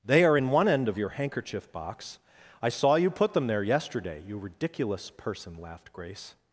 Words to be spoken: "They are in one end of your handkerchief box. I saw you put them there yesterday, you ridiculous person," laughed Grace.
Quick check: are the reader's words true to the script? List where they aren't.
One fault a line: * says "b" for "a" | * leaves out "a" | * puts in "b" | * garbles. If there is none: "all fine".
all fine